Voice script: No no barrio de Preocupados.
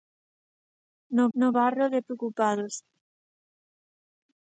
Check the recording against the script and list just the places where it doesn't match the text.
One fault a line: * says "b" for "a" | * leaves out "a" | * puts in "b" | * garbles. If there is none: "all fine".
all fine